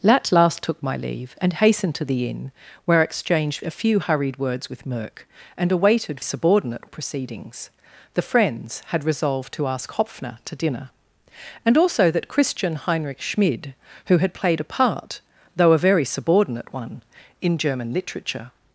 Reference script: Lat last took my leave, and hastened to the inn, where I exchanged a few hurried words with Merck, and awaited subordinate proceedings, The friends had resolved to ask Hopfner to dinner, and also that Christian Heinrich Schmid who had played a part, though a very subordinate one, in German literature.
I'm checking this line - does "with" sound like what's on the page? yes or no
yes